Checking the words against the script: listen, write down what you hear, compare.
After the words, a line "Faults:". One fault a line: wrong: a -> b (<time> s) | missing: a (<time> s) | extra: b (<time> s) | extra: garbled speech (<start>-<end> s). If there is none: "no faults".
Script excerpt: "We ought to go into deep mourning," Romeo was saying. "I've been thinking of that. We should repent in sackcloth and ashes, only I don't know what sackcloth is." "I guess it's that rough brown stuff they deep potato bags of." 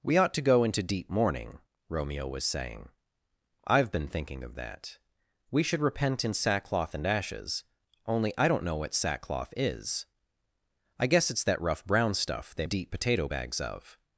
"We ought to go into deep mourning," Romeo was saying. "I've been thinking of that. We should repent in sackcloth and ashes, only I don't know what sackcloth is." "I guess it's that rough brown stuff they deep potato bags of."
Faults:
no faults